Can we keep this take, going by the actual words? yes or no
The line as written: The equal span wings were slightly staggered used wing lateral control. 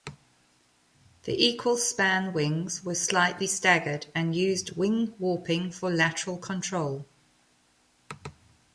no